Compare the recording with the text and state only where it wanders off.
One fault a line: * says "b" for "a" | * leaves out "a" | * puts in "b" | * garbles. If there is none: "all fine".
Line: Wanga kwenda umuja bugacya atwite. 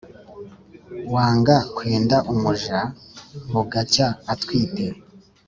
all fine